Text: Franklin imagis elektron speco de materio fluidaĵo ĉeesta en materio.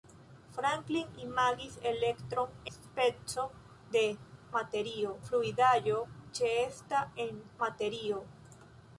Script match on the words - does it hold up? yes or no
yes